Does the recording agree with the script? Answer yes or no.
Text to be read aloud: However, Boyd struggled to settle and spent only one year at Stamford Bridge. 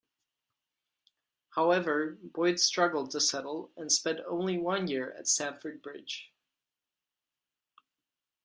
yes